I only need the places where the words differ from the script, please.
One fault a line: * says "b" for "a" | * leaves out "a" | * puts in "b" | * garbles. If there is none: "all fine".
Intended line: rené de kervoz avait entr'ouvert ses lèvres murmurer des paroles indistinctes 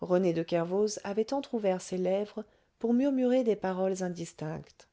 * puts in "pour"